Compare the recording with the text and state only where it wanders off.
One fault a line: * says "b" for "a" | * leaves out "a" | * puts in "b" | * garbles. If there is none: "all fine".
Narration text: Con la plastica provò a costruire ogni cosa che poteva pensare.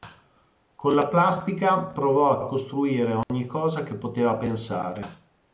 * puts in "a"